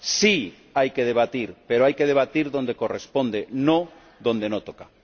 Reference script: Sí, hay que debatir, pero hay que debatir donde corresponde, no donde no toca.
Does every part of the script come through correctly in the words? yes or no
yes